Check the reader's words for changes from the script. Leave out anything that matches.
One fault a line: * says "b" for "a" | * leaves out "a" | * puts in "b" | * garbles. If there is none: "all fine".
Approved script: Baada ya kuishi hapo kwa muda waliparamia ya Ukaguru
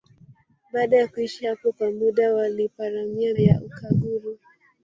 all fine